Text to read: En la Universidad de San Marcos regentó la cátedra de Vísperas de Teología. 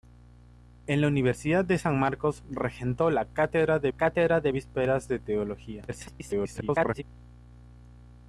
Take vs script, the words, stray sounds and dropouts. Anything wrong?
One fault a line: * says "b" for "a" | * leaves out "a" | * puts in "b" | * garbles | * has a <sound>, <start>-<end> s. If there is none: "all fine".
* puts in "cátedra de"
* garbles